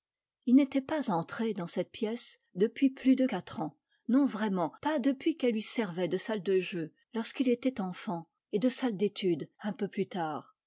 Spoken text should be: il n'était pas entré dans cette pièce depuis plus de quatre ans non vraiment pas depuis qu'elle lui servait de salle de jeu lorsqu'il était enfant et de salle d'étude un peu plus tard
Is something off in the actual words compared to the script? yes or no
no